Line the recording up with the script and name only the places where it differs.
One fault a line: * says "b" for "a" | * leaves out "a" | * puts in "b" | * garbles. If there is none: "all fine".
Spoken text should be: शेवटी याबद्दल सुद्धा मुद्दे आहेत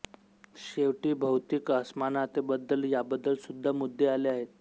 * puts in "भौतिक असमानतेबद्दल"
* puts in "आले"